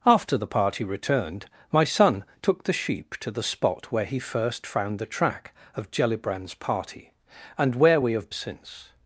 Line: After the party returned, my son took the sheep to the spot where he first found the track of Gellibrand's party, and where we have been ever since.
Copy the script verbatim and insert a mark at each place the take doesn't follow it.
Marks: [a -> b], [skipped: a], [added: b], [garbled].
After the party returned, my son took the sheep to the spot where he first found the track of Gellibrand's party, and where we have [skipped: been ever] since.